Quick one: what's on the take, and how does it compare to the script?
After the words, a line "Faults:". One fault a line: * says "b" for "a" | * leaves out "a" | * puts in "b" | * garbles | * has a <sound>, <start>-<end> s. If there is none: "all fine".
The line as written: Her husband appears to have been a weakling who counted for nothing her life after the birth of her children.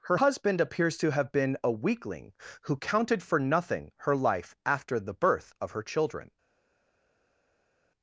Her husband appears to have been a weakling who counted for nothing her life after the birth of her children.
Faults:
all fine